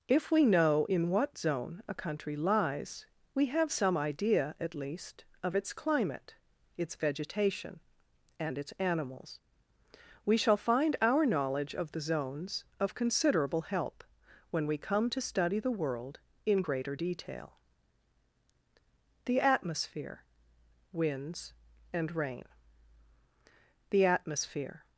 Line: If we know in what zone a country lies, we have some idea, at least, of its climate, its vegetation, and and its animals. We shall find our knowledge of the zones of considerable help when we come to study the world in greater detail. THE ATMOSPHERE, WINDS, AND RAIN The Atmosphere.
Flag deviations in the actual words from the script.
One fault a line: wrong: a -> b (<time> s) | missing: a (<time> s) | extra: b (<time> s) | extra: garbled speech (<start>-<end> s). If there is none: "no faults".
missing: and (8.6 s)